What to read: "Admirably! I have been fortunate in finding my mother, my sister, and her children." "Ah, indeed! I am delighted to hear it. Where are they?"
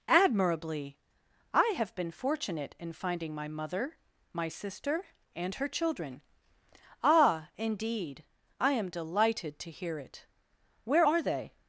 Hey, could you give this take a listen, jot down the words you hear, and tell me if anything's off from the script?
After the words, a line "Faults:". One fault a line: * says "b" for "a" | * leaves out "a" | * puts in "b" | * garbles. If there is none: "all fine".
"Admirably! I have been fortunate in finding my mother, my sister, and her children." "Ah, indeed! I am delighted to hear it. Where are they?"
Faults:
all fine